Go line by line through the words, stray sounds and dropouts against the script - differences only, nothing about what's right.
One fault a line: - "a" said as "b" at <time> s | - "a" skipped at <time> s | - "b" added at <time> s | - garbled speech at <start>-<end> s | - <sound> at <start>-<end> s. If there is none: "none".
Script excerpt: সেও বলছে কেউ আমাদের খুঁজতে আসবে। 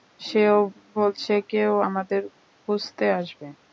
none